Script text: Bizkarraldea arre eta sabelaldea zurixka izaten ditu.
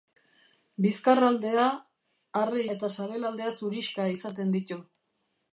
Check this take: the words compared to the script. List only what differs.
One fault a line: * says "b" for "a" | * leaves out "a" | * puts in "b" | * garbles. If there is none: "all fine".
all fine